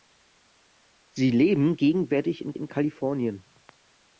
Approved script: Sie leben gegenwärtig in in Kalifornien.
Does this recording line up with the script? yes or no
yes